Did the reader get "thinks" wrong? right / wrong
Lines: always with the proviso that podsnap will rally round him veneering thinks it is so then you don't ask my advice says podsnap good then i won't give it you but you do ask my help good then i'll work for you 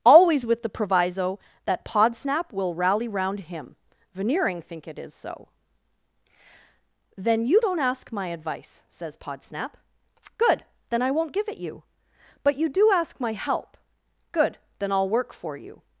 wrong